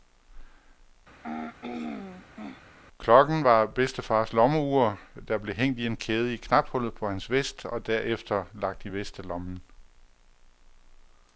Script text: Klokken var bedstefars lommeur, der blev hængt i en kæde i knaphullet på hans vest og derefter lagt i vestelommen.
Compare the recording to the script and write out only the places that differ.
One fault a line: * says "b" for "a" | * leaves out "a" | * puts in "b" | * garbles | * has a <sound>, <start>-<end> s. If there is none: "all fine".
* has a throat clearing, 1.2-2.6 s